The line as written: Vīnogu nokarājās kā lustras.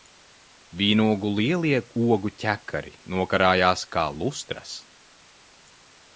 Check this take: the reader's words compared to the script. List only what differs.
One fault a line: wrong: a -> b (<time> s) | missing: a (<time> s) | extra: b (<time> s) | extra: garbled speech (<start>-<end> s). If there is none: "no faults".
extra: lielie ogu ķekari (1.4 s)